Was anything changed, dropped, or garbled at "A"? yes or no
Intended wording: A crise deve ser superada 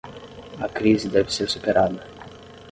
no